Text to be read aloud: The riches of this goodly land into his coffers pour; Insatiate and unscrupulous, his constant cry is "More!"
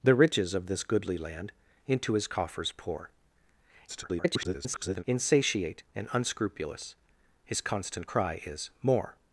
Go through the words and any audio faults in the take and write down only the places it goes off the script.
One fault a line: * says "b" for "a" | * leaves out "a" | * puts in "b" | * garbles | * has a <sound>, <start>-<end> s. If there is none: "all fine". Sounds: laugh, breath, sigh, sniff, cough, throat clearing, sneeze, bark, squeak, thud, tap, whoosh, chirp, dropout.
* garbles